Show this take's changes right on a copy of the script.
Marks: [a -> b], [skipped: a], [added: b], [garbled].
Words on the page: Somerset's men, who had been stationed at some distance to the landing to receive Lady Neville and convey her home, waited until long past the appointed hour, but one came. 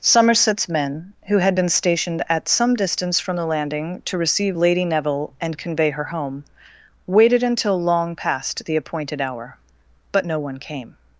Somerset's men, who had been stationed at some distance [to -> from] the landing to receive Lady Neville and convey her home, waited until long past the appointed hour, but [added: no] one came.